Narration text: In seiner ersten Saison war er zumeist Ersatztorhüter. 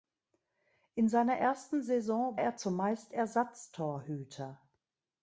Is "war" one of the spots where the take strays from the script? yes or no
yes